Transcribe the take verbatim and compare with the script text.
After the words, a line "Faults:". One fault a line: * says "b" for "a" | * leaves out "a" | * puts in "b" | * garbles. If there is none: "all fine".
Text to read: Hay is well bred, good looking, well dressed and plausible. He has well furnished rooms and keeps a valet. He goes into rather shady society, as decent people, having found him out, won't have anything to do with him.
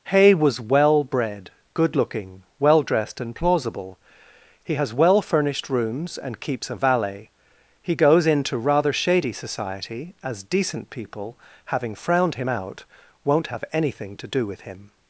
Hay was well bred, good looking, well dressed and plausible. He has well furnished rooms and keeps a valet. He goes into rather shady society, as decent people, having frowned him out, won't have anything to do with him.
Faults:
* says "was" for "is"
* says "frowned" for "found"